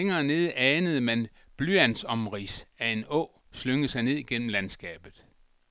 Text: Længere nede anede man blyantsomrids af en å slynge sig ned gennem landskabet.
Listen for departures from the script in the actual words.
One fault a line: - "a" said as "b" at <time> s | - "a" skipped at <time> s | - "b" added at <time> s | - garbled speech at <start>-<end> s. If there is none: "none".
none